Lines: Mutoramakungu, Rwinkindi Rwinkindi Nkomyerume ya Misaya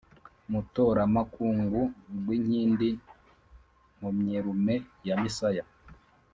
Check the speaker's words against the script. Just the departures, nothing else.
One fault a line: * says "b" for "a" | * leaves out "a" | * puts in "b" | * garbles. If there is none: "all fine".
* leaves out "Rwinkindi"